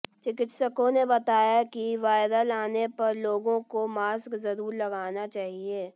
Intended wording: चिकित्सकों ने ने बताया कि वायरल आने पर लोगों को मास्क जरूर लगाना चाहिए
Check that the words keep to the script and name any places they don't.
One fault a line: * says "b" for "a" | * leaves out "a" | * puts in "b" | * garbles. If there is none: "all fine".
* leaves out "ने"